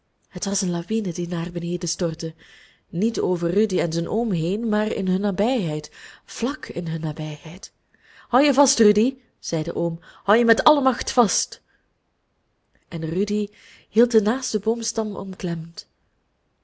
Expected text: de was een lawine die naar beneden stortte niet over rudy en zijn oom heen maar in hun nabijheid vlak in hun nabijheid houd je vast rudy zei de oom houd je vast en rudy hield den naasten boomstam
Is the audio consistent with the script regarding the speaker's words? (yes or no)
no